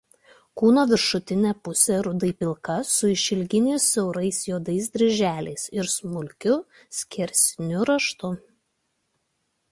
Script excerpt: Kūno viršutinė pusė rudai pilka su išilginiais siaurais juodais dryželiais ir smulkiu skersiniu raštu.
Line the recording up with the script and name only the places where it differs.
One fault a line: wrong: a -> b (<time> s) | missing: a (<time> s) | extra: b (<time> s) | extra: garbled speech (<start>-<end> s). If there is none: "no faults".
no faults